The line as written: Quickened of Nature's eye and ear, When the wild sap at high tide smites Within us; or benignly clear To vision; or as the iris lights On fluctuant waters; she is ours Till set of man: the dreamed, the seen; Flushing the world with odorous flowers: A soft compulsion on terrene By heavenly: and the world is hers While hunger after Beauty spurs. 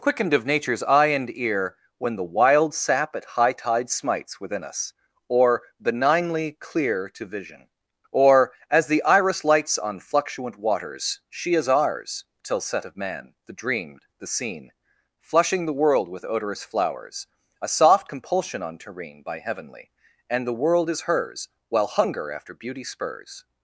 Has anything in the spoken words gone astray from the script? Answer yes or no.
no